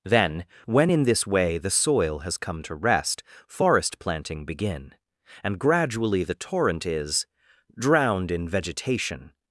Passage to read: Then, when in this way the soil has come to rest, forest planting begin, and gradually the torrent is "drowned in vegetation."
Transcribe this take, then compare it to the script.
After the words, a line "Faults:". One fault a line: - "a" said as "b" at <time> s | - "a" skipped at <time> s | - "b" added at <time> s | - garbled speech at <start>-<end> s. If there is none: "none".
Then, when in this way the soil has come to rest, forest planting begin, and gradually the torrent is "drowned in vegetation."
Faults:
none